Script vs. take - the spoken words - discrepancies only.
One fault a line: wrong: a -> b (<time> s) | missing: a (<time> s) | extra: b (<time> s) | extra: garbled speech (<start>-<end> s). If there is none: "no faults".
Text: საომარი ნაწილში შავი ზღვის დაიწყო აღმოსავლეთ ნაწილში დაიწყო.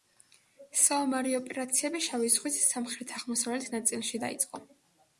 wrong: ნაწილში -> ოპერაციები (1.4 s)
wrong: დაიწყო -> სამხრეთ (2.7 s)